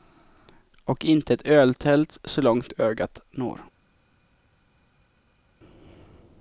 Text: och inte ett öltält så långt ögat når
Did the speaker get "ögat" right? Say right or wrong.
right